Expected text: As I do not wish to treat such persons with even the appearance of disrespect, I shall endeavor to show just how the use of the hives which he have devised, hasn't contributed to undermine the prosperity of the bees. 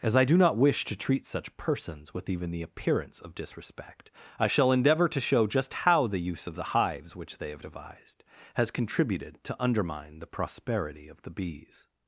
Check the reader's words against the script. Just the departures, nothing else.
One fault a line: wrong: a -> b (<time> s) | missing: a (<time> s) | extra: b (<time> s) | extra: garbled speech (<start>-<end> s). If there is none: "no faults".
wrong: he -> they (7.4 s)
wrong: hasn't -> has (8.5 s)